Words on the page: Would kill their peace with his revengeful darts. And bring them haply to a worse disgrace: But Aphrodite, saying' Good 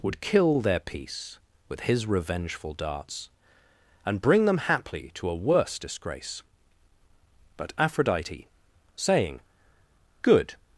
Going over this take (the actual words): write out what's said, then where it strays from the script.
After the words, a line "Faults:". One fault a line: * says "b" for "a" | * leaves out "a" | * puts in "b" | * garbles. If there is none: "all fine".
Would kill their peace with his revengeful darts. And bring them haply to a worse disgrace: But Aphrodite, saying' Good
Faults:
all fine